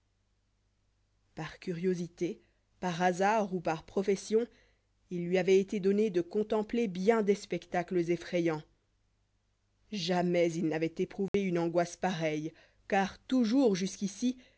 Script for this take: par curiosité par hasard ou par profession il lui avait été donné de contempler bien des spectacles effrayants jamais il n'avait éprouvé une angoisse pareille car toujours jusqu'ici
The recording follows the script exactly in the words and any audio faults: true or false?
false